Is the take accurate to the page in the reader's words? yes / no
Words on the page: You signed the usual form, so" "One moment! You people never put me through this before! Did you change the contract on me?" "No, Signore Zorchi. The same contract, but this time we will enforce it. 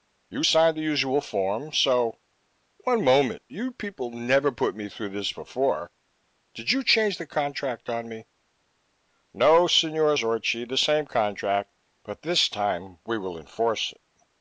yes